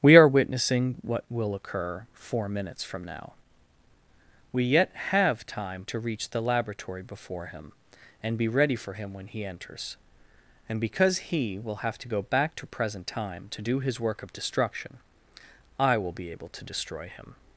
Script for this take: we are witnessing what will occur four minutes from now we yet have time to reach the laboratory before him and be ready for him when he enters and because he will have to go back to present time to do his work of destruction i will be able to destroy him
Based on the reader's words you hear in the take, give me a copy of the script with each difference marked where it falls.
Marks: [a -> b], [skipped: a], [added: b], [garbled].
we are witnessing what will occur four minutes from now we yet have time to reach the laboratory before him and be ready for him when he enters and because he will have to go back to present time to do his work of destruction i will be able to destroy him